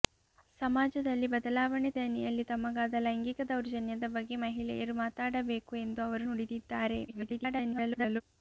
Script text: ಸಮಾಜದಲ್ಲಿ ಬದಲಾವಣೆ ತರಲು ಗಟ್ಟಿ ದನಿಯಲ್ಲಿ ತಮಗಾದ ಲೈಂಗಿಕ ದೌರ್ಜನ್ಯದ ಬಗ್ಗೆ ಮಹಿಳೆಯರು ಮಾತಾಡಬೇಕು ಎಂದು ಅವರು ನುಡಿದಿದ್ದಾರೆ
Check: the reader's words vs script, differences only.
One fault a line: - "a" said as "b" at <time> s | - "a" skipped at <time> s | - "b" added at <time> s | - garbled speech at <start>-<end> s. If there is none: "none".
- "ತರಲು ಗಟ್ಟಿ" skipped at 1.9 s
- garbled speech at 7.1-8.2 s